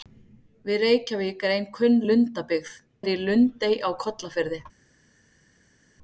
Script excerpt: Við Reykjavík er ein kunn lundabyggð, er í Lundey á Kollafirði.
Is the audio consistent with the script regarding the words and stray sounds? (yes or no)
yes